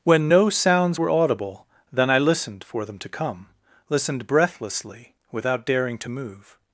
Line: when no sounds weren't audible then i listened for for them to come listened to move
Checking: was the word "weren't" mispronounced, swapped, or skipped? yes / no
yes